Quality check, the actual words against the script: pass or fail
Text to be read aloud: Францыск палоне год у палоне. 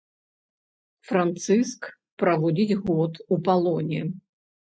fail